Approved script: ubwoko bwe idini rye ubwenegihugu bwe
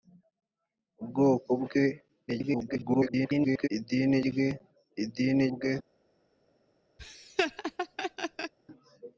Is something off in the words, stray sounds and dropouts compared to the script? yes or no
yes